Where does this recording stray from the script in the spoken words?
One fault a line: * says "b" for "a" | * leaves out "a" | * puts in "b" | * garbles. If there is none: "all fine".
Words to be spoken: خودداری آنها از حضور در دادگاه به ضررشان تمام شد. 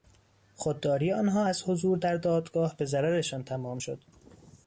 all fine